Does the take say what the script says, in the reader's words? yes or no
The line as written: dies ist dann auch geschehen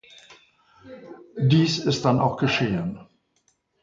yes